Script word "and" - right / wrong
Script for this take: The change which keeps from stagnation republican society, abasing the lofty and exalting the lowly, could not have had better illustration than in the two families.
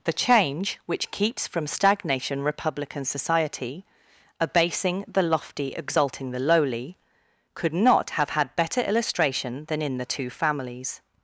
wrong